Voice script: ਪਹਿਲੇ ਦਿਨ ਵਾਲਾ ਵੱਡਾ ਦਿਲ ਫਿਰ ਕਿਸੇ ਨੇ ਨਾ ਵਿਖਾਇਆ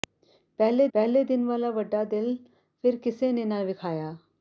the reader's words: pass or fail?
fail